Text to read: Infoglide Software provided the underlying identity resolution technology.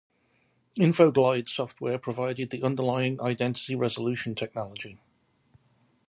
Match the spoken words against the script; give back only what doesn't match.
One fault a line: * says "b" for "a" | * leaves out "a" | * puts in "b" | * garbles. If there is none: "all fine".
all fine